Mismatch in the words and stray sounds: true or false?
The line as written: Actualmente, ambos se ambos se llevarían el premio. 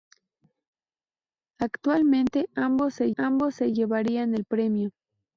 false